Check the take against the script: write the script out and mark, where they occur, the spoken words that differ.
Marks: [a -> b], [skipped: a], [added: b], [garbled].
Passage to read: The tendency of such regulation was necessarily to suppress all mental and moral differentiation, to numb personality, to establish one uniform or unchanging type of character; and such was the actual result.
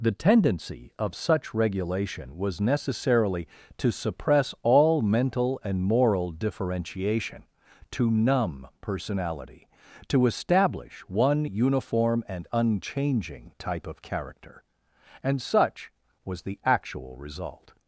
The tendency of such regulation was necessarily to suppress all mental and moral differentiation, to numb personality, to establish one uniform [or -> and] unchanging type of character; and such was the actual result.